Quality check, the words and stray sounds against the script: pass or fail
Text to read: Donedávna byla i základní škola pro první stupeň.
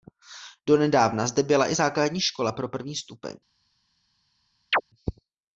fail